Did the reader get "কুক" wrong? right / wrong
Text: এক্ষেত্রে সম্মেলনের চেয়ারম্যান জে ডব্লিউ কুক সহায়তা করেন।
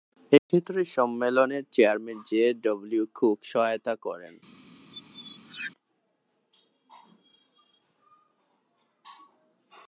right